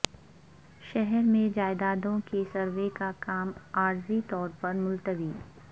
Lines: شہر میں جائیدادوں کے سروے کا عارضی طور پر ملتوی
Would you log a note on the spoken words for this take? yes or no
yes